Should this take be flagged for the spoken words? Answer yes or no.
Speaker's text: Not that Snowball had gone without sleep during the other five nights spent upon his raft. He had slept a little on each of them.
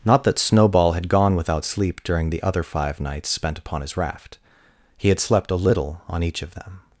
no